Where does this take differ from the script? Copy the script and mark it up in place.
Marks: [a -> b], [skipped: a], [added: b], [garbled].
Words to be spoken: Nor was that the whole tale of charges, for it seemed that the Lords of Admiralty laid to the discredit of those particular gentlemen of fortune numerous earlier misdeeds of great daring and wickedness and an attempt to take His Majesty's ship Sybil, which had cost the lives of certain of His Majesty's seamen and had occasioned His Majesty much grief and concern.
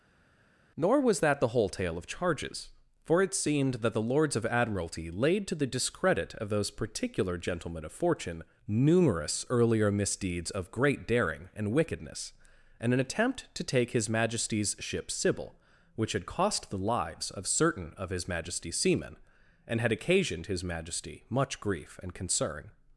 Nor was that the whole tale of charges, for it seemed that the Lords of Admiralty laid to the discredit of those particular gentlemen of fortune numerous earlier misdeeds of great daring and wickedness and an attempt to take His Majesty's ship Sybil, which had cost the lives of certain of His Majesty's seamen and had occasioned His Majesty much grief and concern.